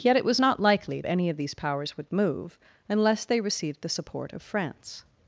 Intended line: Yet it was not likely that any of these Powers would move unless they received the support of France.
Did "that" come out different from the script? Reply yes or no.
yes